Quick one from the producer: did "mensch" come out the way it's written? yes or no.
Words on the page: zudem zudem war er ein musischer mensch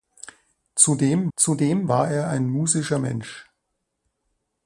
yes